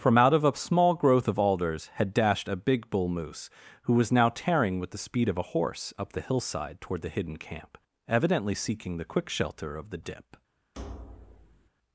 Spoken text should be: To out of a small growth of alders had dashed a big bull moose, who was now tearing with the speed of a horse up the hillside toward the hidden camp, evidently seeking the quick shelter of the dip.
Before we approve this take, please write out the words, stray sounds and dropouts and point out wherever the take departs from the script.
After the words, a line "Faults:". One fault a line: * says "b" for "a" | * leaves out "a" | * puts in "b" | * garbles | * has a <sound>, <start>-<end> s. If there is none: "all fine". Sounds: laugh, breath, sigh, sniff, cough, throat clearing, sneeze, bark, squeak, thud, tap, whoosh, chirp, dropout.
From out of a small growth of alders had dashed a big bull moose, who was now tearing with the speed of a horse up the hillside toward the hidden camp, evidently seeking the quick shelter of the dip.
Faults:
* says "From" for "To"
* has a thud, 10.7-11.7 s